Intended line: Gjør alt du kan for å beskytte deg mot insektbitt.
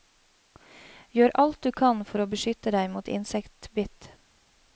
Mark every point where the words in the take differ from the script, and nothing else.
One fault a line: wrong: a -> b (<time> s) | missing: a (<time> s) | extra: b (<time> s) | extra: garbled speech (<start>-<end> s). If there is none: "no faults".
no faults